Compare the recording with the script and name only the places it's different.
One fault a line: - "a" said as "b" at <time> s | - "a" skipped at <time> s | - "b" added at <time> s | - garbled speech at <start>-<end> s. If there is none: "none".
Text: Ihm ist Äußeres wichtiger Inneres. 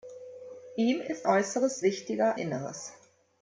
none